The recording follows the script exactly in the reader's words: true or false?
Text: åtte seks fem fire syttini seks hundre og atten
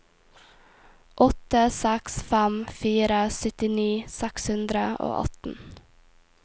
true